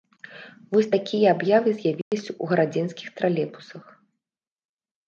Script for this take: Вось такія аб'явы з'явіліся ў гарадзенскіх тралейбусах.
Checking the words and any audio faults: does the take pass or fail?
fail